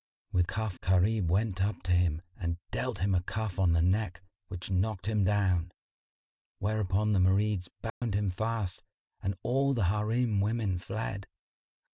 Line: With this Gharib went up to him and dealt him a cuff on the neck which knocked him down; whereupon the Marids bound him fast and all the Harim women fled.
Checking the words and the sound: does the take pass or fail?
fail